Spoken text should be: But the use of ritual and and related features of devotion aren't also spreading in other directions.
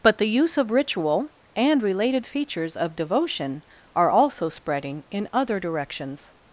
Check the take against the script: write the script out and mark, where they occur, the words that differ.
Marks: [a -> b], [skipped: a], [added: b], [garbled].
But the use of ritual and [skipped: and] related features of devotion [aren't -> are] also spreading in other directions.